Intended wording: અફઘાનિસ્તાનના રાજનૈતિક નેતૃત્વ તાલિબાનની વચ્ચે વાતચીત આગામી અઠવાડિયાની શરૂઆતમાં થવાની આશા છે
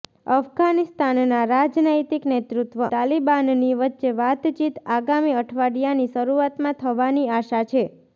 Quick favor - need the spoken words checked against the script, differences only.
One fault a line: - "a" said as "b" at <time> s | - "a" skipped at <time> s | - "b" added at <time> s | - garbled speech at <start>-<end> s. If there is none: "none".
none